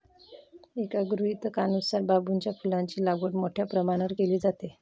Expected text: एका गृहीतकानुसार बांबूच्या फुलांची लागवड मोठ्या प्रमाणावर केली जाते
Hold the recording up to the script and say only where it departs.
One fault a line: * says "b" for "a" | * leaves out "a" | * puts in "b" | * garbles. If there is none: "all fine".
all fine